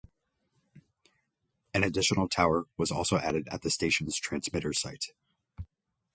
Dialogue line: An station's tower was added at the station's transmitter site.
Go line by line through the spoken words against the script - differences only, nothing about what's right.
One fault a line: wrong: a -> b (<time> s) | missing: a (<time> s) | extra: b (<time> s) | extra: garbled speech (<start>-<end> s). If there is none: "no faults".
wrong: station's -> additional (1.8 s)
extra: also (2.9 s)